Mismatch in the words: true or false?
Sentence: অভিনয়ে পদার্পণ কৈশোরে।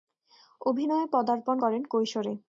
true